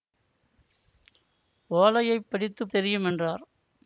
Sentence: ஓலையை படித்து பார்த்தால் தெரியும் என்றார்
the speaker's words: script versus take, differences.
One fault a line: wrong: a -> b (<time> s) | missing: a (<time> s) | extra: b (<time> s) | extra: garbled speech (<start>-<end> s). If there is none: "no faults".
missing: பார்த்தால் (2.6 s)